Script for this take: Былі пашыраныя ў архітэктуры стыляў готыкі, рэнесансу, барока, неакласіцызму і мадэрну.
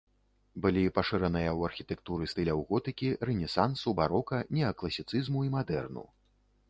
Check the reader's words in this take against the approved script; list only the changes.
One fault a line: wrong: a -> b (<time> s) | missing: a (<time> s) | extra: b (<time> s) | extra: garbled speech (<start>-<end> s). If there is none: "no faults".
no faults